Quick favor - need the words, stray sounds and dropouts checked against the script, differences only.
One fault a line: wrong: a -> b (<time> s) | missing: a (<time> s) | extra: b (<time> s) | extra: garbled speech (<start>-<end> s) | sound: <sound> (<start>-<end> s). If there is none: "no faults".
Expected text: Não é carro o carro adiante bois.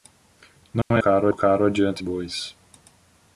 sound: dropout (0.8-0.9 s)